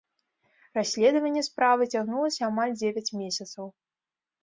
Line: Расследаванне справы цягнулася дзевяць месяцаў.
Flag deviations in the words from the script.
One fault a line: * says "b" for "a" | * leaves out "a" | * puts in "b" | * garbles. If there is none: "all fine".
* puts in "амаль"